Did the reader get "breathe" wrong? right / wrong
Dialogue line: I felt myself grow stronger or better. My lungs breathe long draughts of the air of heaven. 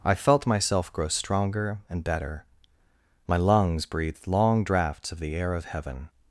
wrong